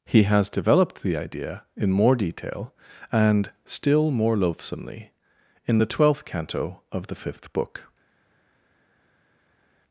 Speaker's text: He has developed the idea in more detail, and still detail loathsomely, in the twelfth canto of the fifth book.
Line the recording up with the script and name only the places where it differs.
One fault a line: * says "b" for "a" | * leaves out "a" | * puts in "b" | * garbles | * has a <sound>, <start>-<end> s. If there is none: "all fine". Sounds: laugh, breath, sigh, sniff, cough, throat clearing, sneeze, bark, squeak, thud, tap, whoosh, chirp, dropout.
* says "more" for "detail"